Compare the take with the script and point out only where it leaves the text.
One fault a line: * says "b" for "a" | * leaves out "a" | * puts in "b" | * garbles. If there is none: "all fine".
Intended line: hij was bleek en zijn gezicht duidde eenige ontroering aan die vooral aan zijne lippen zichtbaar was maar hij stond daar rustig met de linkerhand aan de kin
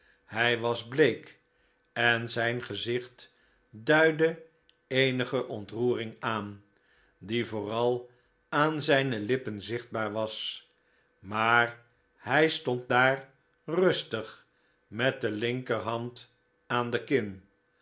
all fine